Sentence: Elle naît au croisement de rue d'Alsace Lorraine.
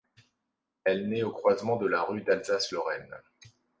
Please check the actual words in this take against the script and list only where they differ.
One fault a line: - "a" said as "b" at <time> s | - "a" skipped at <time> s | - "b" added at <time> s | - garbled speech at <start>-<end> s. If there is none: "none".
- "la" added at 1.9 s